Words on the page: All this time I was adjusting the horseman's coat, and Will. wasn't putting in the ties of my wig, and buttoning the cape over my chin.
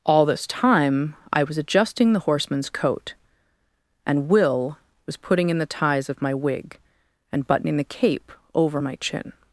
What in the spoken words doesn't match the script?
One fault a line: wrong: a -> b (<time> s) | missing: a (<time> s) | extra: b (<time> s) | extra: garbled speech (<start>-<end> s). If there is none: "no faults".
wrong: wasn't -> was (5.0 s)